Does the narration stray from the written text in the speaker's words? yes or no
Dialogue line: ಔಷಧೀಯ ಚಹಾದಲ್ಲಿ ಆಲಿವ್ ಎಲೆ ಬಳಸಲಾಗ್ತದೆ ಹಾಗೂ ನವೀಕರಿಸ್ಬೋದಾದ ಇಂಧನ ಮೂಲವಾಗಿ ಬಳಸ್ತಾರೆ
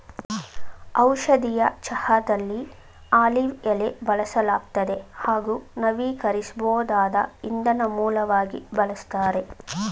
no